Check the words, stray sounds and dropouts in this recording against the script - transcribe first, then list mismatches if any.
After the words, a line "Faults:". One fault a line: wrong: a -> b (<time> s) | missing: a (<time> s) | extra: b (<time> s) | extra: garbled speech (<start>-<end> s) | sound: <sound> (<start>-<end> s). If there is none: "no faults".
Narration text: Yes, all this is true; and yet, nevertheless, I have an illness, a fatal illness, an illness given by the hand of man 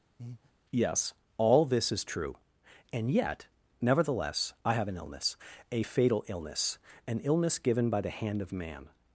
Yes, all this is true; and yet, nevertheless, I have an illness, a fatal illness, an illness given by the hand of man
Faults:
sound: breath (0.2-0.5 s)